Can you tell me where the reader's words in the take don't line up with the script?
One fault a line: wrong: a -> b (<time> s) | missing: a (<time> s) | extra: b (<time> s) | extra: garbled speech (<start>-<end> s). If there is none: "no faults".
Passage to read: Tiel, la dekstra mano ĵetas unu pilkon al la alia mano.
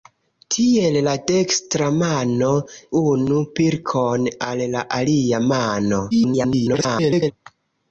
missing: ĵetas (2.5 s)
extra: garbled speech (6.1-7.3 s)